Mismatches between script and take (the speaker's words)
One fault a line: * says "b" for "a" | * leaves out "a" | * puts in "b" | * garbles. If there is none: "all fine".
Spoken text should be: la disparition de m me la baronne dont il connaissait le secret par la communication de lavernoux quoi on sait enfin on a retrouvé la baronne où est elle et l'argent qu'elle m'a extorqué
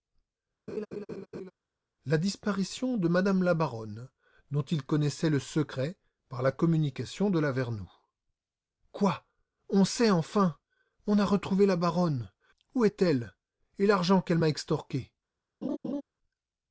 all fine